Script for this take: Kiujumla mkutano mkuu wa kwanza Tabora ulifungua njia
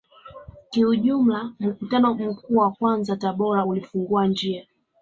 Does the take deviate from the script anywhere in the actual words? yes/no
no